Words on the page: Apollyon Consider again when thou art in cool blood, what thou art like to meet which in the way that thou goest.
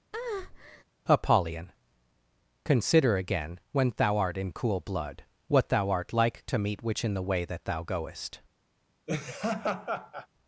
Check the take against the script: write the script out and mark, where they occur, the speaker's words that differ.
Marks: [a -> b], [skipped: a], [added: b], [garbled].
Apollyon Consider again when thou art in cool blood, what thou art like to meet which in the way that thou goest.